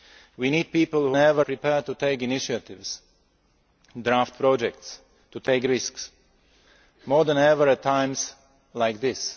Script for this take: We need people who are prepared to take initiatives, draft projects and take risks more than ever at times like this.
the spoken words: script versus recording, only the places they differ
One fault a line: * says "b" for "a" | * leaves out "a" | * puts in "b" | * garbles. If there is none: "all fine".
* says "ever" for "are"